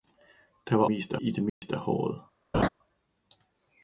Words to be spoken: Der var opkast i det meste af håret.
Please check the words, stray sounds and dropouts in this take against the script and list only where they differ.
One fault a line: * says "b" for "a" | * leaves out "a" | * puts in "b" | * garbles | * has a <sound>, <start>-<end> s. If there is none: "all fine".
* says "meste" for "opkast"
* has a dropout, 1.5-1.6 s
* has a laugh, 2.5-2.7 s